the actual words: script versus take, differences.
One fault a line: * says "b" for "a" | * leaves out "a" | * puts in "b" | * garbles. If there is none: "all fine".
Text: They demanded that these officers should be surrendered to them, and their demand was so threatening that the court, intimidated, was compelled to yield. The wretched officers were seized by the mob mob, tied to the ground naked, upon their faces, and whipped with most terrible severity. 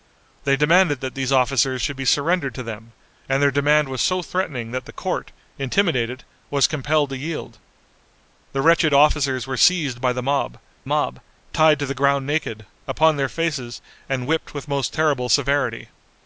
all fine